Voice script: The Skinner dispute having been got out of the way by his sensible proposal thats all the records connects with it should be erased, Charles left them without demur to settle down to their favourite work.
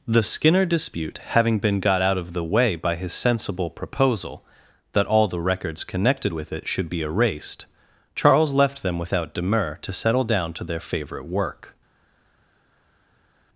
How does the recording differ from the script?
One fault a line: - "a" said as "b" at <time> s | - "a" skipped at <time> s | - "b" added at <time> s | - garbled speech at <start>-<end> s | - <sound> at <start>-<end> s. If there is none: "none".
- "thats" said as "that" at 4.9 s
- "connects" said as "connected" at 5.8 s